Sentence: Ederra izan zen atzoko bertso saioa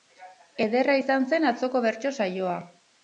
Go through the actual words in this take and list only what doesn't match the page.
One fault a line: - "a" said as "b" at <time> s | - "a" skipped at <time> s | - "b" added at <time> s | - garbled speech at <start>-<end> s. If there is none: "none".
none